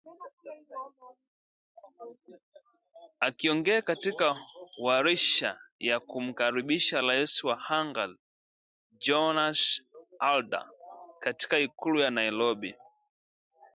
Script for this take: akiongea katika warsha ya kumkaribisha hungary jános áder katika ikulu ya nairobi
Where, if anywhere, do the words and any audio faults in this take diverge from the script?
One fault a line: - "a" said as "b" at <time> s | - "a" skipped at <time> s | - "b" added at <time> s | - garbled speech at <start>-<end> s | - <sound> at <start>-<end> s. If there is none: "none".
- "rais wa" added at 7.0 s